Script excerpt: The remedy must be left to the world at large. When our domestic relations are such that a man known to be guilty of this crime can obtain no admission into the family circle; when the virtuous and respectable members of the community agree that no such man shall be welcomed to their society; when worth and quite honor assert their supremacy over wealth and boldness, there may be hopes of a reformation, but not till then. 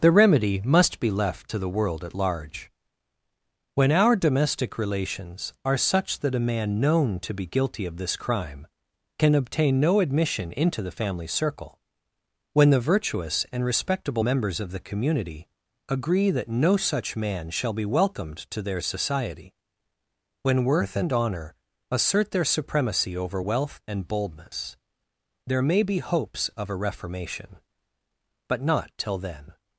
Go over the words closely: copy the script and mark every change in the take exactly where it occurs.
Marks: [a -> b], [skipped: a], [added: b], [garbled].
The remedy must be left to the world at large. When our domestic relations are such that a man known to be guilty of this crime can obtain no admission into the family circle; when the virtuous and respectable members of the community agree that no such man shall be welcomed to their society; when worth and [skipped: quite] honor assert their supremacy over wealth and boldness, there may be hopes of a reformation, but not till then.